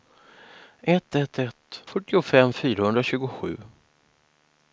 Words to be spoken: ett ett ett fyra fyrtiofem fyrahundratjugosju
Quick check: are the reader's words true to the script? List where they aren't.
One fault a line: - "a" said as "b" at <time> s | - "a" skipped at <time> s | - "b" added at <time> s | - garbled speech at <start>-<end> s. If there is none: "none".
- "fyra" skipped at 1.8 s